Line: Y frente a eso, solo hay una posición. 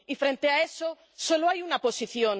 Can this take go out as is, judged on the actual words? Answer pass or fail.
pass